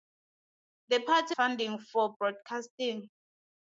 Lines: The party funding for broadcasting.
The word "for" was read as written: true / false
true